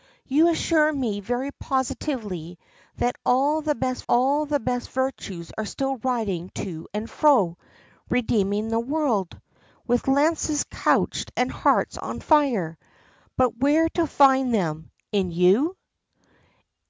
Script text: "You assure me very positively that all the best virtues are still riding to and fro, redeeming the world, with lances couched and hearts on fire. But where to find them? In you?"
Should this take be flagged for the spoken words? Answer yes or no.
yes